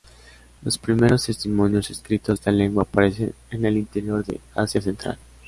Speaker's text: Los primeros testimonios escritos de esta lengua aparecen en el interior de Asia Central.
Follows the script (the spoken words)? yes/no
no